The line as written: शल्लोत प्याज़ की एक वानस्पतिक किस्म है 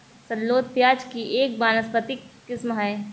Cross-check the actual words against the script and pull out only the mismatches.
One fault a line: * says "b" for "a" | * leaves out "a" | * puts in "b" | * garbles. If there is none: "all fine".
all fine